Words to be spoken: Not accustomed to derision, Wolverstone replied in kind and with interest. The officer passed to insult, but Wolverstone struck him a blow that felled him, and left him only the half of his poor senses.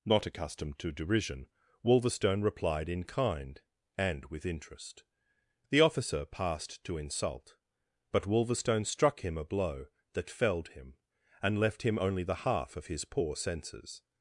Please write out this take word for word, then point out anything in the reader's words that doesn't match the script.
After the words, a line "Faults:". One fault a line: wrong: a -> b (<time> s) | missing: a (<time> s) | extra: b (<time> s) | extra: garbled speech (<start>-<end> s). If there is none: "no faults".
Not accustomed to derision, Wolverstone replied in kind and with interest. The officer passed to insult, but Wolverstone struck him a blow that felled him, and left him only the half of his poor senses.
Faults:
no faults